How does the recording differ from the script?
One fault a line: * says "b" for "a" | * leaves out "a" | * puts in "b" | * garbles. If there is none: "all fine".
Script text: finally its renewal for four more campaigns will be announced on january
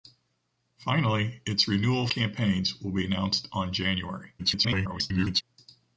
* leaves out "for four more"
* garbles